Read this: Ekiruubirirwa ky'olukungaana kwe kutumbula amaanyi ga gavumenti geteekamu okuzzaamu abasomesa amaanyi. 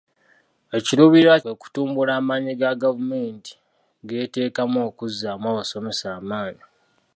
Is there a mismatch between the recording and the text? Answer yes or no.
yes